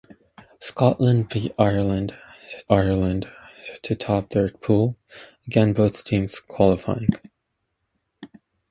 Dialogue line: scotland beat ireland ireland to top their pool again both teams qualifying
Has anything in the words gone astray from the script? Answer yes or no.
no